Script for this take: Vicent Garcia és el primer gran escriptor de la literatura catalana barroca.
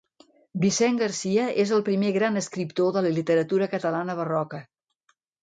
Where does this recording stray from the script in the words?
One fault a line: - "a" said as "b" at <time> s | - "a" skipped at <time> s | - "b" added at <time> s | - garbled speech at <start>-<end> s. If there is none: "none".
none